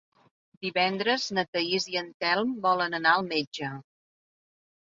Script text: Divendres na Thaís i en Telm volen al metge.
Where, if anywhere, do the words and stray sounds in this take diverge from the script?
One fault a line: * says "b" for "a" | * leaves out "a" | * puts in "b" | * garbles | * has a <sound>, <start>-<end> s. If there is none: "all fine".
* puts in "anar"